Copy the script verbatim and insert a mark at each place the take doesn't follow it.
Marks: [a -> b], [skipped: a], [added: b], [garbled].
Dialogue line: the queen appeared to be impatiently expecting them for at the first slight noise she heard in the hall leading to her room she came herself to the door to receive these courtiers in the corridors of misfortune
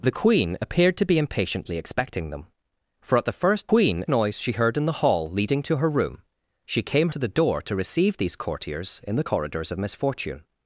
the queen appeared to be impatiently expecting them for at the first [slight -> queen] noise she heard in the hall leading to her room she came [skipped: herself] to the door to receive these courtiers in the corridors of misfortune